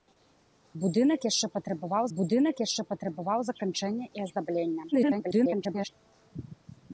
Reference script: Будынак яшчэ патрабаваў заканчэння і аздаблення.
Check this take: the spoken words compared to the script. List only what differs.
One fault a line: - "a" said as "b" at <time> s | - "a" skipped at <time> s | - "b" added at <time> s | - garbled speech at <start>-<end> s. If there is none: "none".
- "будынак яшчэ патрабаваў" added at 2.2 s
- garbled speech at 4.9-5.9 s